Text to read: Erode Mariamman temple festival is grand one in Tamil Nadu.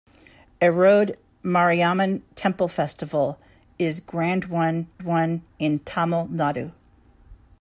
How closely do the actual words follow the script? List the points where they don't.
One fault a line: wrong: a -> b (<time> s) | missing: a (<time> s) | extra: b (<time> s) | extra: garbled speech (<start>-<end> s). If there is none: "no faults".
extra: one (5.0 s)